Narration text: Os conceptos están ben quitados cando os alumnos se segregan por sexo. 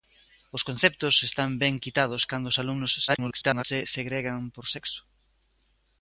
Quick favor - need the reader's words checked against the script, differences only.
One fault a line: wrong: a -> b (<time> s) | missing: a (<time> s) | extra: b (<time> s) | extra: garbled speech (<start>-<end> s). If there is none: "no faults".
extra: garbled speech (3.1-3.6 s)